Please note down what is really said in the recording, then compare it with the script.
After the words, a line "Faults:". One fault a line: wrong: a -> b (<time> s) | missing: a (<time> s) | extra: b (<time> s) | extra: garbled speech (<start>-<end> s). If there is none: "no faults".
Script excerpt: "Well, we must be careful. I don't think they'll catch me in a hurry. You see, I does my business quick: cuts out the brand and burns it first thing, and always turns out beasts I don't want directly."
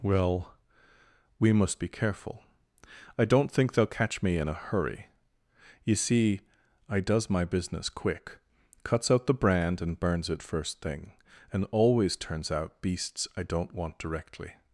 "Well, we must be careful. I don't think they'll catch me in a hurry. You see, I does my business quick: cuts out the brand and burns it first thing, and always turns out beasts I don't want directly."
Faults:
no faults